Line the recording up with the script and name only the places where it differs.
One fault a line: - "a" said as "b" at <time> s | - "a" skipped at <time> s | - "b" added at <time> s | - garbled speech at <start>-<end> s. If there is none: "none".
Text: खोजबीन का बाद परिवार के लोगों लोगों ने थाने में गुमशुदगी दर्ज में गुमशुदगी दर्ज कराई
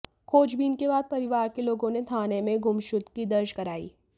- "का" said as "के" at 0.8 s
- "लोगों" skipped at 1.9 s
- "में गुमशुदगी दर्ज" skipped at 3.5 s